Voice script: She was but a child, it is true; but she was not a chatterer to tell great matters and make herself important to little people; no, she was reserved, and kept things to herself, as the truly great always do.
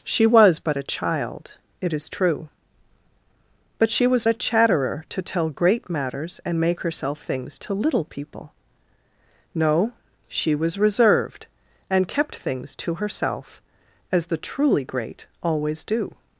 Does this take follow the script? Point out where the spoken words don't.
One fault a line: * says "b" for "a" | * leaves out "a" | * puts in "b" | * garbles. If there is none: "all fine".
* leaves out "not"
* says "things" for "important"